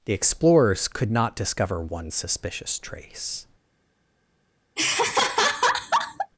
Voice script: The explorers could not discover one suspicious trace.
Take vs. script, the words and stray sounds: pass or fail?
fail